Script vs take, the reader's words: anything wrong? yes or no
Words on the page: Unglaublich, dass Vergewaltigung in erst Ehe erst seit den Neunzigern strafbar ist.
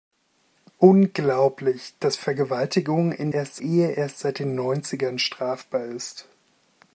no